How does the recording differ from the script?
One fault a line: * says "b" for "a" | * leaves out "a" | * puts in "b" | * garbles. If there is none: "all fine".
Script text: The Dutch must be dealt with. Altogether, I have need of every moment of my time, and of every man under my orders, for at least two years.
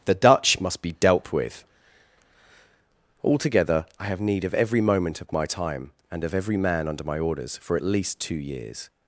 all fine